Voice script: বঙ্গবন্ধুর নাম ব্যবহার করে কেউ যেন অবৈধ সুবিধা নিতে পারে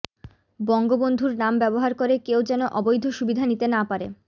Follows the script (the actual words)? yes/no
no